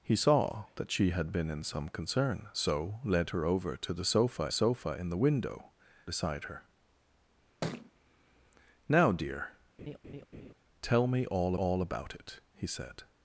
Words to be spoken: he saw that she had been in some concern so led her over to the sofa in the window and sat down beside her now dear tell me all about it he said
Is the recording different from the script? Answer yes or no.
yes